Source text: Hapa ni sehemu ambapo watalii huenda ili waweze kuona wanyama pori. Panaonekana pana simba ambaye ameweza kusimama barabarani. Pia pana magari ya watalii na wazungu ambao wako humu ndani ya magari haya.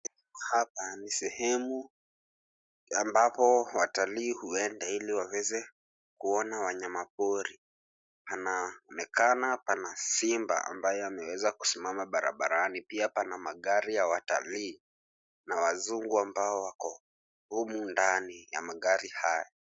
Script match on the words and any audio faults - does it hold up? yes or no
yes